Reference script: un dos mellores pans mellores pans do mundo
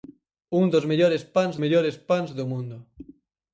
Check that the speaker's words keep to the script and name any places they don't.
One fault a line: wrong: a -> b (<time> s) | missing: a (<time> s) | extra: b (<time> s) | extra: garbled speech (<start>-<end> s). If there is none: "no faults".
no faults